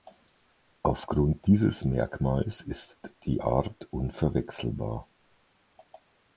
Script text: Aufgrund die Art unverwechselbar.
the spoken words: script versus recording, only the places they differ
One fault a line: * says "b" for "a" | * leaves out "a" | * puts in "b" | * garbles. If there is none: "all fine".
* puts in "dieses Merkmals ist"